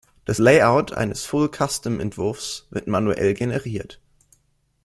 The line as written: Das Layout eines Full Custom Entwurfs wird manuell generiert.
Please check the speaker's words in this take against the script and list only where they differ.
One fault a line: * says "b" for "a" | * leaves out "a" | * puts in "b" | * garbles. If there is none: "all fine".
all fine